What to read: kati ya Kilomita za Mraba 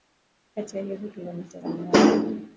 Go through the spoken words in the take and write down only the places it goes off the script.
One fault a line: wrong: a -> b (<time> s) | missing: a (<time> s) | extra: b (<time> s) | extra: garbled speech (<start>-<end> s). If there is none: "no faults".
extra: hizo (0.8 s)